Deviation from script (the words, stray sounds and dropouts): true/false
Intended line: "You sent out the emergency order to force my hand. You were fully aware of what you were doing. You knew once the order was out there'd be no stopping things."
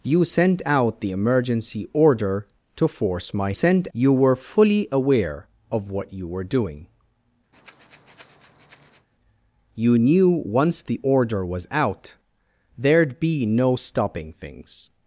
true